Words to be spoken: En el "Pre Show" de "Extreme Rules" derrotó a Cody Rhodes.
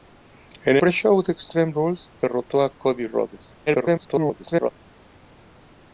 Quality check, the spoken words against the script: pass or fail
fail